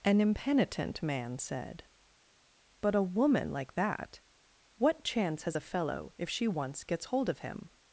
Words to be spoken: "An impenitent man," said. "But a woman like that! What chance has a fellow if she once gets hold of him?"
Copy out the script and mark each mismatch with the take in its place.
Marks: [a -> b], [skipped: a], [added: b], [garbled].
"An impenitent man," said. "But a woman like that! What chance has a fellow if she once gets hold of him?"